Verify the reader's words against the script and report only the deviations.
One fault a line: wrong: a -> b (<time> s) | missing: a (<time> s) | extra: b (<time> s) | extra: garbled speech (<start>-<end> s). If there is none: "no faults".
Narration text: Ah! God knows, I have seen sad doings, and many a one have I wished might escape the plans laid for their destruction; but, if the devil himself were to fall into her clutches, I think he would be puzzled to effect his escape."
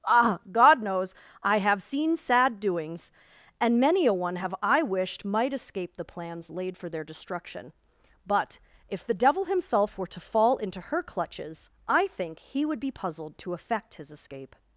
no faults